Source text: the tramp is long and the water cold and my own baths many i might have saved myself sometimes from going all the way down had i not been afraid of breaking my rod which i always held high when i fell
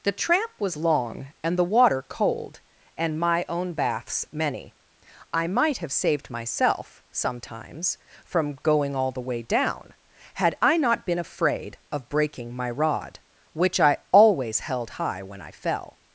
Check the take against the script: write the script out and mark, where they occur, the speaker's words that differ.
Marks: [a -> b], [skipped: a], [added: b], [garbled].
the tramp [is -> was] long and the water cold and my own baths many i might have saved myself sometimes from going all the way down had i not been afraid of breaking my rod which i always held high when i fell